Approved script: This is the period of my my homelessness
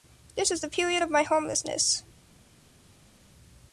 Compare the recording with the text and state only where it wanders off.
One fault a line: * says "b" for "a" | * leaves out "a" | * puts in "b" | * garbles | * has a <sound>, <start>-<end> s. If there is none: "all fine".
* leaves out "my"